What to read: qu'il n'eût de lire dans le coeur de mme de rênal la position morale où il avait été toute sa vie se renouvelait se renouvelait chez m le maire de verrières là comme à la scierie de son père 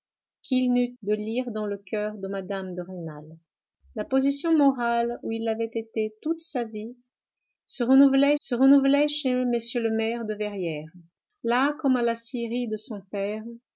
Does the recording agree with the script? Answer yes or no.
yes